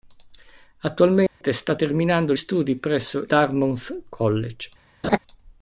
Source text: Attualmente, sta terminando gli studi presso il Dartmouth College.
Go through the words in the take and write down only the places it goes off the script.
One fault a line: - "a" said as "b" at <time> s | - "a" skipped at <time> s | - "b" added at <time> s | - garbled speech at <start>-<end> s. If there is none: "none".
- "gli" skipped at 2.3 s
- "il" skipped at 3.2 s